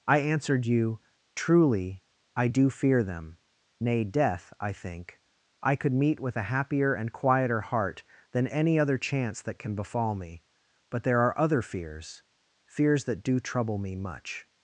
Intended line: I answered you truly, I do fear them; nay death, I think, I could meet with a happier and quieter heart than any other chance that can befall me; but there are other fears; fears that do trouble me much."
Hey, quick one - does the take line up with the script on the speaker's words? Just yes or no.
yes